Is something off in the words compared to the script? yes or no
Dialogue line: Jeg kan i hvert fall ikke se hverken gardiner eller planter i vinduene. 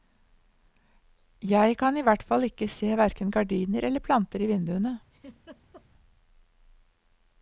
no